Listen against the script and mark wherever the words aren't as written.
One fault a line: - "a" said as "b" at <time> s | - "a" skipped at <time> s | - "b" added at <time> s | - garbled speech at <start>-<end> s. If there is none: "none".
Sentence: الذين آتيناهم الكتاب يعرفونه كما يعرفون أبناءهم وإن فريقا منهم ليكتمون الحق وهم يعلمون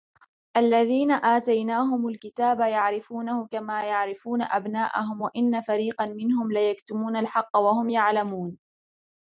none